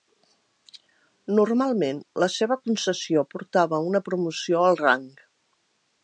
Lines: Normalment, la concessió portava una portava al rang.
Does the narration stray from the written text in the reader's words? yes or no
yes